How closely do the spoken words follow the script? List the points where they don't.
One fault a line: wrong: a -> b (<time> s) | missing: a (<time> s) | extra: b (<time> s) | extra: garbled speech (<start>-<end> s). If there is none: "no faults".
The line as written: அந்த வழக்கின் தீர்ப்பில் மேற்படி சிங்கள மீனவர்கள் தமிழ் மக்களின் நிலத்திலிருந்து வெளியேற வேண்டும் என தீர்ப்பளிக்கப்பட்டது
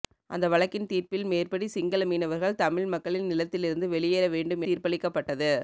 missing: என (4.6 s)